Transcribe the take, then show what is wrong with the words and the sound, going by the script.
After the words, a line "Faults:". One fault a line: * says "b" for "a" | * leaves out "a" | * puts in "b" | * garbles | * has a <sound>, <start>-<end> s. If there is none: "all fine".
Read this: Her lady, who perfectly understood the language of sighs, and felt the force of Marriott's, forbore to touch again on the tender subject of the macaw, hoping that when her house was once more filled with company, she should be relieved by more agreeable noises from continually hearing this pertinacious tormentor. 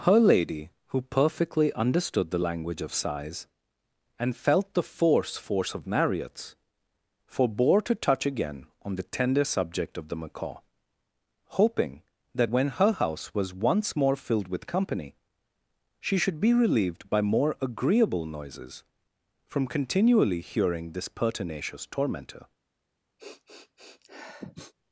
Her lady, who perfectly understood the language of sighs, and felt the force force of Marriott's, forbore to touch again on the tender subject of the macaw, hoping that when her house was once more filled with company, she should be relieved by more agreeable noises from continually hearing this pertinacious tormentor.
Faults:
* puts in "force"
* has a sniff, 23.2-24.7 s